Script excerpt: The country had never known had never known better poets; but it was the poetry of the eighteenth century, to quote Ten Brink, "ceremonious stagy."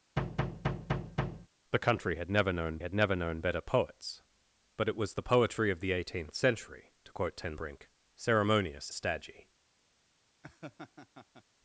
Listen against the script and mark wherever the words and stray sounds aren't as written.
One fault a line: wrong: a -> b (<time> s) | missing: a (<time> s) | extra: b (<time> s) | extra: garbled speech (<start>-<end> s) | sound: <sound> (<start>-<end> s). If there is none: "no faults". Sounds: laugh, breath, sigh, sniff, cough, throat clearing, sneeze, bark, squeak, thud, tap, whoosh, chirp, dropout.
sound: thud (0.2-1.5 s)
sound: laugh (10.4-11.4 s)